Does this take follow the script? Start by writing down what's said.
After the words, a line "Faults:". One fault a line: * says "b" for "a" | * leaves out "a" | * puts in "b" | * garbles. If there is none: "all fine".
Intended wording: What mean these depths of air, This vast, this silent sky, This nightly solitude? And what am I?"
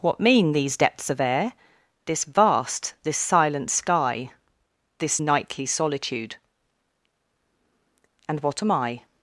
What mean these depths of air, This vast, this silent sky, This nightly solitude? And what am I?"
Faults:
all fine